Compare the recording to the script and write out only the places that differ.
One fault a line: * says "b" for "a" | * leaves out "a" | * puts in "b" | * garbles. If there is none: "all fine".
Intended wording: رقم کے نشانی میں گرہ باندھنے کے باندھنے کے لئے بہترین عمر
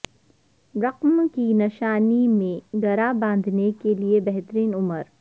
* says "کی" for "کے"
* leaves out "باندھنے کے"